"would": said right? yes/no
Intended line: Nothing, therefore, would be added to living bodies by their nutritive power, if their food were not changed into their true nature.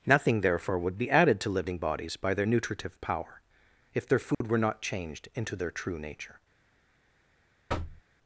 yes